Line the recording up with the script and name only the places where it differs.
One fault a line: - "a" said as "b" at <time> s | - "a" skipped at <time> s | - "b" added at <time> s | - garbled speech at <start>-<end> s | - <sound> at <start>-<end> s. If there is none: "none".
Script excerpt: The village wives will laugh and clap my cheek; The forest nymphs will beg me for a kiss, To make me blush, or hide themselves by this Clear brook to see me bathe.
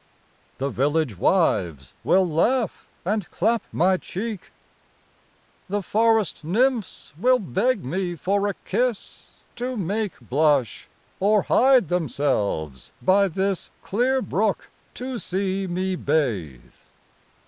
- "me" skipped at 10.2 s